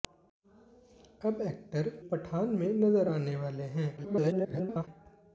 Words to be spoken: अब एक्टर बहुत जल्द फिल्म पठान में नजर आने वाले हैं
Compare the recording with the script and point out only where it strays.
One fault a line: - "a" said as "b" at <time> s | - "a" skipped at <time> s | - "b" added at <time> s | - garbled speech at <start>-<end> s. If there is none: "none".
- "बहुत जल्द फिल्म" skipped at 1.9 s
- garbled speech at 4.0-4.9 s